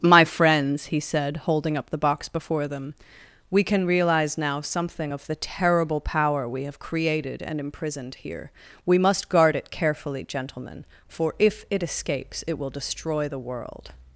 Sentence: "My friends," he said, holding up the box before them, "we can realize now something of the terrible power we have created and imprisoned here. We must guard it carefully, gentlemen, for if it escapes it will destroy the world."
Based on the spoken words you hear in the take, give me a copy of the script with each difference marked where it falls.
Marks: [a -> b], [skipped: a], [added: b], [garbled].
"My friends," he said, holding up the box before them, "we can realize now something of the terrible power we have created and imprisoned here. We must guard it carefully, gentlemen, for if it escapes it will destroy the world."